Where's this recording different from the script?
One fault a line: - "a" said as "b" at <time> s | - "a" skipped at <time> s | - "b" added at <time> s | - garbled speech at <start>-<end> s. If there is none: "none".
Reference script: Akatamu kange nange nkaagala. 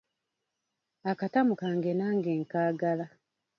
none